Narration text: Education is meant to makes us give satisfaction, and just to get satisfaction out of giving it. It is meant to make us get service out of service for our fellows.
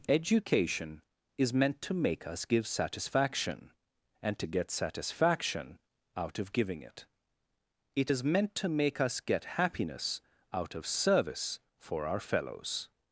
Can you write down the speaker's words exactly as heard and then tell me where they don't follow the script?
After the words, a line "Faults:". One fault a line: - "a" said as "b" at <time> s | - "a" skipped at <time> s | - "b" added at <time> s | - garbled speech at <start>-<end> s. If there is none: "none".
Education is meant to make us give satisfaction, and to get satisfaction out of giving it. It is meant to make us get happiness out of service for our fellows.
Faults:
- "makes" said as "make" at 1.9 s
- "just" skipped at 4.4 s
- "service" said as "happiness" at 9.6 s